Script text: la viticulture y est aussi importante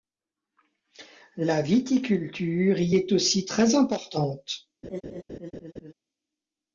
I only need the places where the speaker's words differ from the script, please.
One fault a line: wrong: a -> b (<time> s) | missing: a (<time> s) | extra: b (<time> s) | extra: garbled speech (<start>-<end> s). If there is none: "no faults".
extra: très (3.5 s)